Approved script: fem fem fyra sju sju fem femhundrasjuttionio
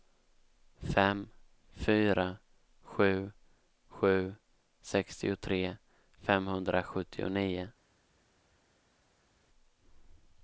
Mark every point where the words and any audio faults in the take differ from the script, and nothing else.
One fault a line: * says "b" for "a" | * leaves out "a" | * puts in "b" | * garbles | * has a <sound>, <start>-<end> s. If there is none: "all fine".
* leaves out "fem"
* says "sextiotre" for "fem"